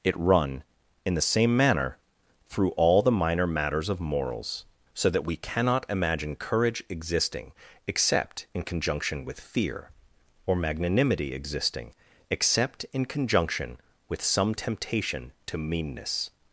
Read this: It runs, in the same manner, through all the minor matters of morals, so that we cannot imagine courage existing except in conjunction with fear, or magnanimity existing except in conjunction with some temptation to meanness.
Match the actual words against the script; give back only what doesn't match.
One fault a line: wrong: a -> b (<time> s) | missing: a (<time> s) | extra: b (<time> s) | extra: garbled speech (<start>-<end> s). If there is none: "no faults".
wrong: runs -> run (0.2 s)